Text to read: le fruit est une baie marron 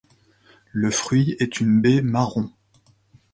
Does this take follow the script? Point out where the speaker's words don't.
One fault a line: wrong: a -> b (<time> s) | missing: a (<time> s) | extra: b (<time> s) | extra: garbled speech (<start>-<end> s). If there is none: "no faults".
no faults